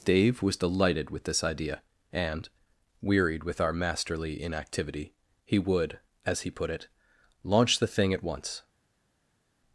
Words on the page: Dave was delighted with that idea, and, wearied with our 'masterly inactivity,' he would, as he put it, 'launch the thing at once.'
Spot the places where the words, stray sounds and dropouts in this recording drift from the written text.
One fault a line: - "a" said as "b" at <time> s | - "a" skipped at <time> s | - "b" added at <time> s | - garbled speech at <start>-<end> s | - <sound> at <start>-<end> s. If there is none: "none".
- "that" said as "this" at 1.2 s